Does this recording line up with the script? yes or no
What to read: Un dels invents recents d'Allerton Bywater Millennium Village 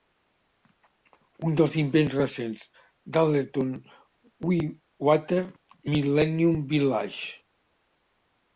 yes